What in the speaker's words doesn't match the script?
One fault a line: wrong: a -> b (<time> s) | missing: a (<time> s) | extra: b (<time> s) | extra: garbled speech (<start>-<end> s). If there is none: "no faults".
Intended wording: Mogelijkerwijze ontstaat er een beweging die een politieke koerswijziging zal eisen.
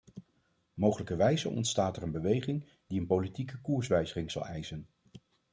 no faults